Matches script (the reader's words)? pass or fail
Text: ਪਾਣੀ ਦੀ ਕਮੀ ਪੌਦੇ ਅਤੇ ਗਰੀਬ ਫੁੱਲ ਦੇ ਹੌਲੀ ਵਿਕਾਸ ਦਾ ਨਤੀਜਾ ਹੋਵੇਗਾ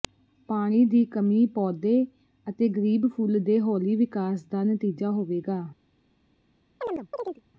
pass